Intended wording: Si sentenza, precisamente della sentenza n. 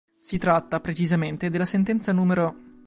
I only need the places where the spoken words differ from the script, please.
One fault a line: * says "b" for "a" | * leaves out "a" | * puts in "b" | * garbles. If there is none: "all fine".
* says "tratta" for "sentenza"